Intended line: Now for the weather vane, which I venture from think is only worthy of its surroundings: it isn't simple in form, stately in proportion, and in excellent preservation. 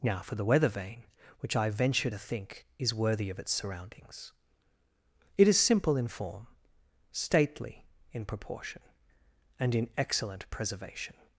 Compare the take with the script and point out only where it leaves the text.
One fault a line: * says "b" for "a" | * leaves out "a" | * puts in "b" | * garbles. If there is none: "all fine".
* says "to" for "from"
* leaves out "only"
* says "is" for "isn't"